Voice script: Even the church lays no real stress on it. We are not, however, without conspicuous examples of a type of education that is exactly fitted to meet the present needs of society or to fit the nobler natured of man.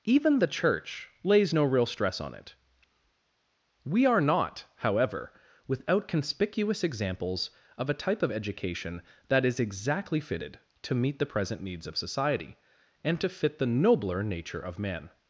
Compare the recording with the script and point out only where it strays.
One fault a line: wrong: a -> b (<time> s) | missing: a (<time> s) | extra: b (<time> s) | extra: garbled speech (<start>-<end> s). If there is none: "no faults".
wrong: or -> and (13.0 s)
wrong: natured -> nature (14.2 s)